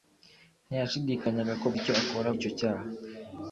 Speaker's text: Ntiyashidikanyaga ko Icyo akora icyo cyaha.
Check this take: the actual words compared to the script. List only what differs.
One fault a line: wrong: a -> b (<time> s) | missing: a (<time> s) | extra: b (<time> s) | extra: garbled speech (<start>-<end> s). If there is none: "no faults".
no faults